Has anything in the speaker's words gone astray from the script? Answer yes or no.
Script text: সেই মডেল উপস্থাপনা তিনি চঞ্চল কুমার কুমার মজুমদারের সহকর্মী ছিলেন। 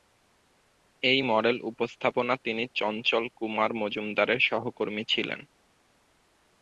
yes